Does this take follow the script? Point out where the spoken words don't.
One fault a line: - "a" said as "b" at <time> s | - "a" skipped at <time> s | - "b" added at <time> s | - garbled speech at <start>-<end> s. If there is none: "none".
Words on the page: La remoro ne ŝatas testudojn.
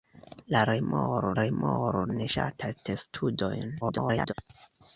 - "remoro" added at 1.4 s
- garbled speech at 3.8-4.3 s